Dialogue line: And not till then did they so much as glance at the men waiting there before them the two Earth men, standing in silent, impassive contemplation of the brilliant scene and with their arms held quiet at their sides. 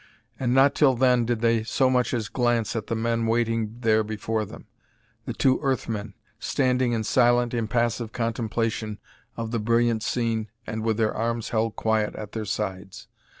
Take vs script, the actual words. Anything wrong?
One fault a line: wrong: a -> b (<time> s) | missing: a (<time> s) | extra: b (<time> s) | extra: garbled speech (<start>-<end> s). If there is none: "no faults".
no faults